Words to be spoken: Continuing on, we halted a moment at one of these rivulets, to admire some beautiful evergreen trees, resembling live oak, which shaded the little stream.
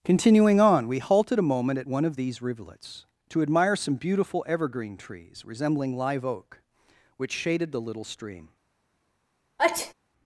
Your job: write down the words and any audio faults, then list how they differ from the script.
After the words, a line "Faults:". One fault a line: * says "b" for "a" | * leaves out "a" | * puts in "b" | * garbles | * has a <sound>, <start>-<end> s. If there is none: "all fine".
Continuing on, we halted a moment at one of these rivulets, to admire some beautiful evergreen trees, resembling live oak, which shaded the little stream.
Faults:
* has a sneeze, 9.6-9.9 s